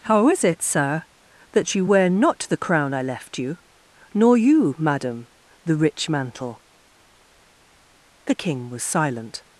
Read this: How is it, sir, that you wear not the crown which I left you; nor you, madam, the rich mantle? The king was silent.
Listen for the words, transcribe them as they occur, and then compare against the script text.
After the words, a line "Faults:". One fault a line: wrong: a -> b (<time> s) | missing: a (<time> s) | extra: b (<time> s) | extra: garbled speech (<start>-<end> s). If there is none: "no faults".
How is it, sir, that you wear not the crown I left you; nor you, madam, the rich mantle? The king was silent.
Faults:
missing: which (2.9 s)